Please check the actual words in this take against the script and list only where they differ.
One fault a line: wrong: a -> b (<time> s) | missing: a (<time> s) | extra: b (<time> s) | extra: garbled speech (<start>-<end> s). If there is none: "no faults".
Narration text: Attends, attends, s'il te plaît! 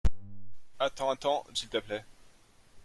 no faults